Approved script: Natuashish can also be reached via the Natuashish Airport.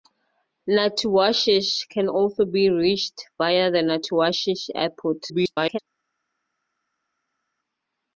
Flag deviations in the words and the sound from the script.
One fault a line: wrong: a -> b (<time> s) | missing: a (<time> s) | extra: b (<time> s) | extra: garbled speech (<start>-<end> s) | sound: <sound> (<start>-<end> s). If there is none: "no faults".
extra: garbled speech (5.3-5.8 s)